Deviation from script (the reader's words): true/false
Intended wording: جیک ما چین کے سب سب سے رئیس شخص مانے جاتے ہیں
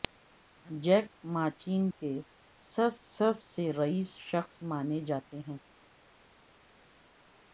false